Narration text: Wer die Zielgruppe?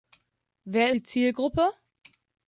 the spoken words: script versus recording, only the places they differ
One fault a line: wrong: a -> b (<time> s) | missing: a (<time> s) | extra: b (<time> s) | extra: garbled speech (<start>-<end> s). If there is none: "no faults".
no faults